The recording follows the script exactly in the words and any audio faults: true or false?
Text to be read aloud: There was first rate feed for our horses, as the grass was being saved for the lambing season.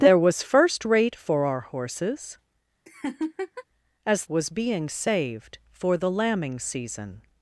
false